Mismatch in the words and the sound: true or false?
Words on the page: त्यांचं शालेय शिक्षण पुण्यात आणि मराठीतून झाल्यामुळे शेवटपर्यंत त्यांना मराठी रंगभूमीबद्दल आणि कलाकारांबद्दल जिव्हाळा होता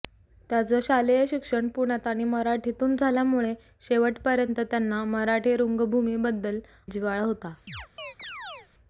true